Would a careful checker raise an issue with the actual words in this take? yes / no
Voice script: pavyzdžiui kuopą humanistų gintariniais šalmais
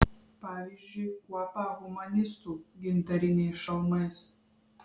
no